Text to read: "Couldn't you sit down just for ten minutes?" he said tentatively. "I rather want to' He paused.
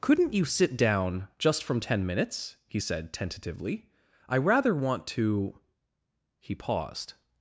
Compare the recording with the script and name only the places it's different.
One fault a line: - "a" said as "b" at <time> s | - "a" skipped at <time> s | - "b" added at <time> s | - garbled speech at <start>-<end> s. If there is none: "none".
- "for" said as "from" at 1.6 s